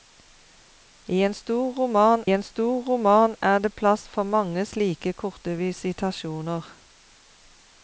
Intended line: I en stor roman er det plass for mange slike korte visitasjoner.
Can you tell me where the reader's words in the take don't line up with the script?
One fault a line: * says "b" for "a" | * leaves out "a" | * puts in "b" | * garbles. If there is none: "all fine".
* puts in "en stor roman"